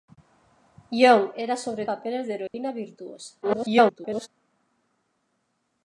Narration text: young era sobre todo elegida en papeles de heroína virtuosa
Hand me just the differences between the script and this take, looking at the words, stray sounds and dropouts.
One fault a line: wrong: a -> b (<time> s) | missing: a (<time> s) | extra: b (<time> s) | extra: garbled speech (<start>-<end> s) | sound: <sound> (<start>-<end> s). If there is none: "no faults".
missing: todo elegida en (1.9 s)
sound: dropout (2.5-2.5 s)
extra: garbled speech (3.4-4.3 s)